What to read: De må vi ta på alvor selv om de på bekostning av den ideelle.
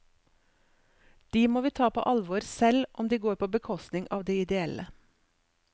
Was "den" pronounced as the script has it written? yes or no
no